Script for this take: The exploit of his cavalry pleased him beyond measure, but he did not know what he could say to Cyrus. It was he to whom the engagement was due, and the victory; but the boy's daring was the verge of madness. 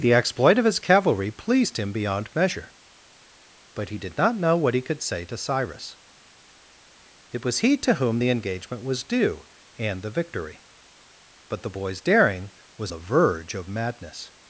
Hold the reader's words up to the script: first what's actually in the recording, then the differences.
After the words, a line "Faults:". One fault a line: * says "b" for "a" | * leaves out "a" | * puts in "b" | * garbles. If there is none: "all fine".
The exploit of his cavalry pleased him beyond measure, but he did not know what he could say to Cyrus. It was he to whom the engagement was due, and the victory; but the boy's daring was the verge of madness.
Faults:
all fine